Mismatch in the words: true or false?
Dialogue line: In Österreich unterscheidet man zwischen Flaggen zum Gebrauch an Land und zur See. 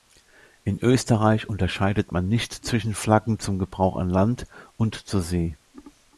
true